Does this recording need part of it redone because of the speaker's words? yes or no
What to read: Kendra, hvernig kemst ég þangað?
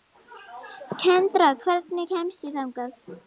no